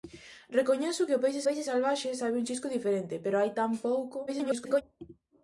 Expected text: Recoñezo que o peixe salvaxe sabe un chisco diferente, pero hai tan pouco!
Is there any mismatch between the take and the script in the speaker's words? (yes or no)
yes